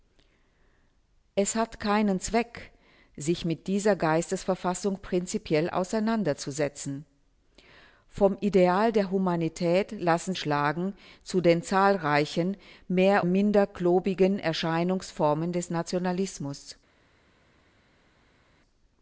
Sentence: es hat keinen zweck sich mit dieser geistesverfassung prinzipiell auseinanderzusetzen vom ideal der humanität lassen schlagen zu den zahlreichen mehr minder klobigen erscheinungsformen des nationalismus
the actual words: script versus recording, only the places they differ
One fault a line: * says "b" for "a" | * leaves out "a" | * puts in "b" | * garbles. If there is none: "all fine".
all fine